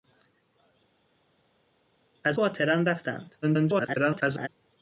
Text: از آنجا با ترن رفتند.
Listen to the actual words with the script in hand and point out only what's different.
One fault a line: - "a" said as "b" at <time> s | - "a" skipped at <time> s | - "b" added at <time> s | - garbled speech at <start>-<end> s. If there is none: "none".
- "آنجا" skipped at 2.4 s
- garbled speech at 3.4-4.5 s